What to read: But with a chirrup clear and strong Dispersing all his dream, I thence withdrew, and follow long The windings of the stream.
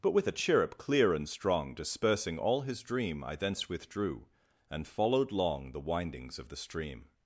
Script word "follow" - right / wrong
wrong